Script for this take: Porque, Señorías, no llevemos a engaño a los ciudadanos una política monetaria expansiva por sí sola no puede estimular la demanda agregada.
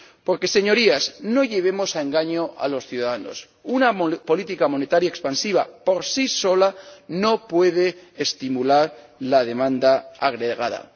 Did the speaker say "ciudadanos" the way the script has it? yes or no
yes